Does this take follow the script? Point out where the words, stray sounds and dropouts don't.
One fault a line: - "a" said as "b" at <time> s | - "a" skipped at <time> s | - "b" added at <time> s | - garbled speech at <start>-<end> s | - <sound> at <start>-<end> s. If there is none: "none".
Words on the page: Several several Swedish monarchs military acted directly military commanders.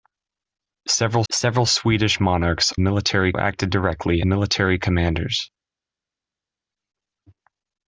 none